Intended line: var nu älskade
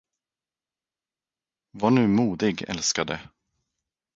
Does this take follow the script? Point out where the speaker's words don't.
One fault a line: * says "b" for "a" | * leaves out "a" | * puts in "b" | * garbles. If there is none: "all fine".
* puts in "modig"